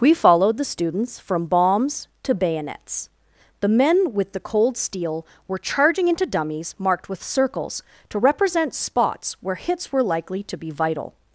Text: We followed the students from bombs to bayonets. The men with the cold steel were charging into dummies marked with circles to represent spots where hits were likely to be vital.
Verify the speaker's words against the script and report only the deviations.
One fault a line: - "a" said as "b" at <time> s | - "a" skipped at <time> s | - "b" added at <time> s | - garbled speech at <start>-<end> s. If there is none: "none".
none